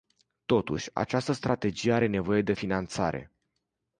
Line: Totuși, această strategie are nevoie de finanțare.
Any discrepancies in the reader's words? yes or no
no